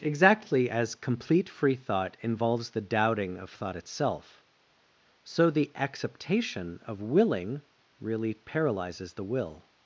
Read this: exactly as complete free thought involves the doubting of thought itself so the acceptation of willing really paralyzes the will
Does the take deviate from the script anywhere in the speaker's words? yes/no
no